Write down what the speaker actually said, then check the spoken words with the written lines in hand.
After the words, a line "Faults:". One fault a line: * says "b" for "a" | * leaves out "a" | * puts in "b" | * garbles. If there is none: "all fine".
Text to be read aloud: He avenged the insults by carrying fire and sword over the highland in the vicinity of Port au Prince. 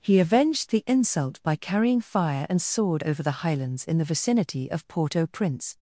He avenged the insult by carrying fire and sword over the highlands in the vicinity of Port au Prince.
Faults:
* says "insult" for "insults"
* says "highlands" for "highland"